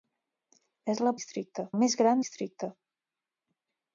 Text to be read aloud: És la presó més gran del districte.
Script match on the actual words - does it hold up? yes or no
no